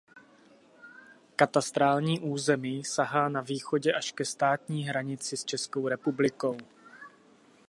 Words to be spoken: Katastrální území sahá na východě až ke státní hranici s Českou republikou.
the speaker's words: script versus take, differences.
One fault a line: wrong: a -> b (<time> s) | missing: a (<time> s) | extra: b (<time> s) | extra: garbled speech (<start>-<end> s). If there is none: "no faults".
no faults